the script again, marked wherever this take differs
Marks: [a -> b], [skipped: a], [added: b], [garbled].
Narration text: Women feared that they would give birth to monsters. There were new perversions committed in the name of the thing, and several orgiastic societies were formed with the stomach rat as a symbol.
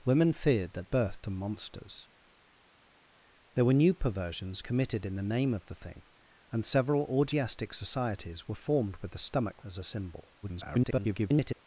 Women feared that [skipped: they would give] birth to monsters. There were new perversions committed in the name of the thing, and several orgiastic societies were formed with the stomach [skipped: rat] as a symbol. [garbled]